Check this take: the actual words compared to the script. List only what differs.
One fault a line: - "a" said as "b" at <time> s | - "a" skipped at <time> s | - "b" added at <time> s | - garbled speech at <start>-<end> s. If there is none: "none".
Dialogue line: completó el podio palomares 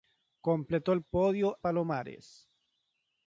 none